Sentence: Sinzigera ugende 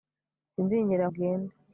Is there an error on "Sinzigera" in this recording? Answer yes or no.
no